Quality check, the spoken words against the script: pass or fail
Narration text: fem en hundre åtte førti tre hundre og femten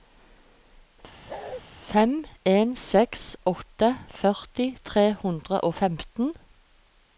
fail